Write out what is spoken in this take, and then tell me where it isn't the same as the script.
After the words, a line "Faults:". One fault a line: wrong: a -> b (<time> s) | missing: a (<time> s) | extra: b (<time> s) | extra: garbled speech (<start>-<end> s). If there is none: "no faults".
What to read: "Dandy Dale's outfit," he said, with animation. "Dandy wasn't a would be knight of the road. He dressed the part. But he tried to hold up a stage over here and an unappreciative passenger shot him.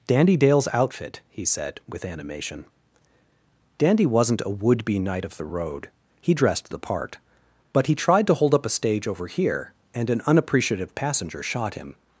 "Dandy Dale's outfit," he said, with animation. "Dandy wasn't a would be knight of the road. He dressed the part. But he tried to hold up a stage over here and an unappreciative passenger shot him.
Faults:
no faults